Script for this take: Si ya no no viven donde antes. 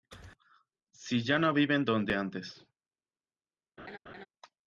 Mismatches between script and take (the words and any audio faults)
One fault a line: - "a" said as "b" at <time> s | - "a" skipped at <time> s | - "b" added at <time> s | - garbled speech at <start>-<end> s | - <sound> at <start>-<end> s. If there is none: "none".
- "no" skipped at 1.5 s
- laugh at 3.8-4.3 s